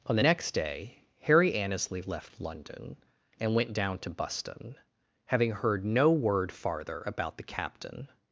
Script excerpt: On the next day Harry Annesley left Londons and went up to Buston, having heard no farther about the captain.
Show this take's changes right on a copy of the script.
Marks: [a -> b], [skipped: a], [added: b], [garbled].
On the next day Harry Annesley left [Londons -> London] and went [up -> down] to Buston, having heard no [added: word] farther about the captain.